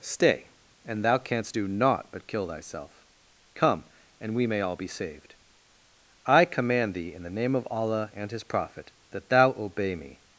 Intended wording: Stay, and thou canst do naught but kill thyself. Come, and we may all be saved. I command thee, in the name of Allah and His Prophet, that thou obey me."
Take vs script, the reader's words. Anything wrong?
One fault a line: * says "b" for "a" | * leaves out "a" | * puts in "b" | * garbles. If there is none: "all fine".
all fine